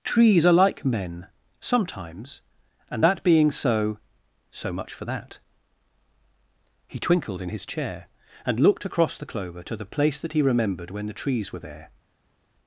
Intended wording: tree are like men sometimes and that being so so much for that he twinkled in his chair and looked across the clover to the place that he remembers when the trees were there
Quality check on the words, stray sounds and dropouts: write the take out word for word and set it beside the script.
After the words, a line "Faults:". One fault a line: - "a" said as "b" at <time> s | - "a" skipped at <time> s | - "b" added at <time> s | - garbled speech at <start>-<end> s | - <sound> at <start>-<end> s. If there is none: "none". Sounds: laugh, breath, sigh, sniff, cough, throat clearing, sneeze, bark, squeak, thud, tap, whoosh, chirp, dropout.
trees are like men sometimes and that being so so much for that he twinkled in his chair and looked across the clover to the place that he remembered when the trees were there
Faults:
- "tree" said as "trees" at 0.0 s
- "remembers" said as "remembered" at 10.4 s